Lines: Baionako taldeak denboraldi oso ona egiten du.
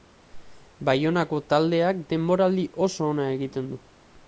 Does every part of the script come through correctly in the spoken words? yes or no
yes